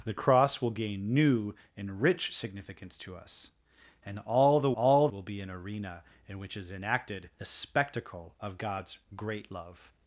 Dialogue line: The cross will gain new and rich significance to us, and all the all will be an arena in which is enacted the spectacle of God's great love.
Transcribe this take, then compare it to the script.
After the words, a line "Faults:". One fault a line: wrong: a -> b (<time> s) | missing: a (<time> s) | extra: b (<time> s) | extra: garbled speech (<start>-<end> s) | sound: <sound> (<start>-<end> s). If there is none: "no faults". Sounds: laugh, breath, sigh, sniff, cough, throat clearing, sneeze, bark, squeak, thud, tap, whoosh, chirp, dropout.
The cross will gain new and rich significance to us, and all the all will be an arena in which is enacted the spectacle of God's great love.
Faults:
no faults